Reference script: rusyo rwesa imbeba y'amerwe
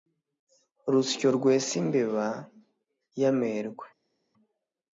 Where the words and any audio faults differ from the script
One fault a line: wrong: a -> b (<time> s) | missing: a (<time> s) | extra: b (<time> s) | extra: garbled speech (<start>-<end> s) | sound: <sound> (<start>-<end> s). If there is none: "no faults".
no faults